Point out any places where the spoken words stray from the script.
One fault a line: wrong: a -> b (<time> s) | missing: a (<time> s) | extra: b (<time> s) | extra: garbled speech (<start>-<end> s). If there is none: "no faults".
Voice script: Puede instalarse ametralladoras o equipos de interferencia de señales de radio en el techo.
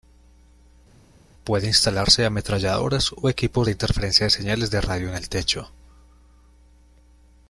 no faults